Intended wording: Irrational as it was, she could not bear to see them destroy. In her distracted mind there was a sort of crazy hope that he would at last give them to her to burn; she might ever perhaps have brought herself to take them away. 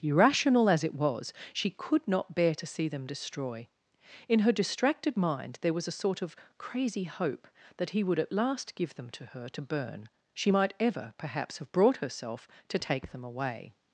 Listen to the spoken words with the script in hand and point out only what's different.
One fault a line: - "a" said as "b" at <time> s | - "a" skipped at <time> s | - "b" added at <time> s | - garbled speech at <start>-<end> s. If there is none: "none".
none